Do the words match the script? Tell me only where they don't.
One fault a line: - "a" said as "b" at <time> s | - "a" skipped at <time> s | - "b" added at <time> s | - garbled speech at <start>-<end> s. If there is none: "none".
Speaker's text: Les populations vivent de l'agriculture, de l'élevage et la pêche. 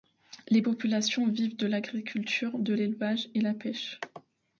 none